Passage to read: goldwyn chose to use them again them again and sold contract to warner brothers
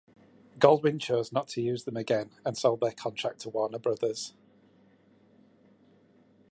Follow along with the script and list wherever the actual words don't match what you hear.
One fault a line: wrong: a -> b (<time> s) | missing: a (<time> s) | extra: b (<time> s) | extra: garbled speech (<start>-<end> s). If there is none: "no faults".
extra: not (1.3 s)
missing: them again (2.3 s)
extra: their (2.8 s)